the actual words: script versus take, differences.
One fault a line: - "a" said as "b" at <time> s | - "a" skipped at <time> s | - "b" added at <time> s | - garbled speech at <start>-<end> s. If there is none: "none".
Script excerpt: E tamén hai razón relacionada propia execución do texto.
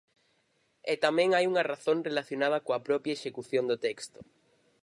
- "unha" added at 1.5 s
- "coa" added at 2.6 s